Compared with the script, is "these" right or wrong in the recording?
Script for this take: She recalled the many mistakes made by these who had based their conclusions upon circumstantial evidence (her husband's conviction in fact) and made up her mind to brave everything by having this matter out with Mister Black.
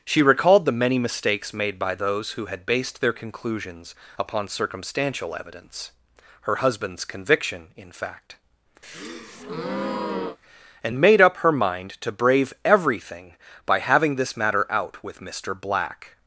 wrong